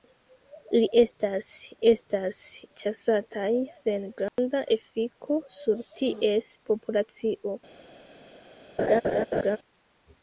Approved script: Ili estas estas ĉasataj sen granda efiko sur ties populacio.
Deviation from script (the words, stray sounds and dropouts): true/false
true